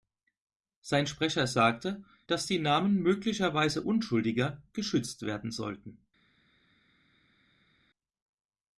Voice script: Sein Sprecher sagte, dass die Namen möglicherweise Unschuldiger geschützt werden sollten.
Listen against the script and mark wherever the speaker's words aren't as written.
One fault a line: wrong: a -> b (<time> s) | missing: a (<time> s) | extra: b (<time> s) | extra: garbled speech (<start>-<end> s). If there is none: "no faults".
no faults